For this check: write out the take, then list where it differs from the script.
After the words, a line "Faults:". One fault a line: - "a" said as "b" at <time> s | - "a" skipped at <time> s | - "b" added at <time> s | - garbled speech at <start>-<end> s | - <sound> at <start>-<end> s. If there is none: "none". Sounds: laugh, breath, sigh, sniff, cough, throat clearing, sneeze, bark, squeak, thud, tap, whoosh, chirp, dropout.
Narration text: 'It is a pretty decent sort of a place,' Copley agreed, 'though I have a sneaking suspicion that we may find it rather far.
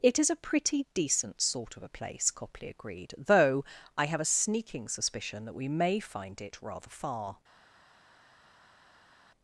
'It is a pretty decent sort of a place,' Copley agreed, 'though I have a sneaking suspicion that we may find it rather far.
Faults:
none